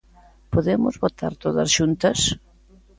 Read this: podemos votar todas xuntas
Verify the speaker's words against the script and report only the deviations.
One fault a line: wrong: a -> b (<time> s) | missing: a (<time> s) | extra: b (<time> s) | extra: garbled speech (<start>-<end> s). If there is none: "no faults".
no faults